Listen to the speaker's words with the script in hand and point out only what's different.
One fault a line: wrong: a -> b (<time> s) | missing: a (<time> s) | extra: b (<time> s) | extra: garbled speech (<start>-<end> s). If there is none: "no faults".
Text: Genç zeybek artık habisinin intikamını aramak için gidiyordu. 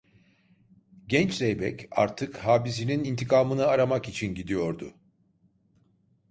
no faults